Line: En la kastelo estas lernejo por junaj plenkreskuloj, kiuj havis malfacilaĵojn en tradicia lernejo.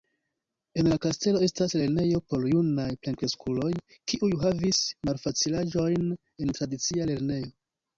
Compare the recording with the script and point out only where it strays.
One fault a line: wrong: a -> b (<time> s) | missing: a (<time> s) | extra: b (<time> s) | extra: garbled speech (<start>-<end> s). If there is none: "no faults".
no faults